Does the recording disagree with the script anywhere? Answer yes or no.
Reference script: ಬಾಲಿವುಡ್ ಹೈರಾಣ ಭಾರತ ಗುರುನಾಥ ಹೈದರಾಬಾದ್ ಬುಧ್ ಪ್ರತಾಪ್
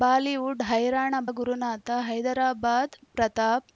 yes